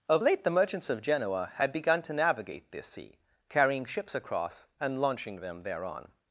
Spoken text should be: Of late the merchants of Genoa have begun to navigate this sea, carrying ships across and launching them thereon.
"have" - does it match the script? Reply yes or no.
no